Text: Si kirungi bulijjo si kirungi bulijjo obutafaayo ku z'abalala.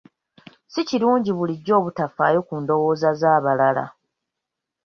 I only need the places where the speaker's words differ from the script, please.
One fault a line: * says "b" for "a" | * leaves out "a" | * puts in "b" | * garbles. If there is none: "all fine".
* leaves out "si kirungi bulijjo"
* puts in "ndowooza"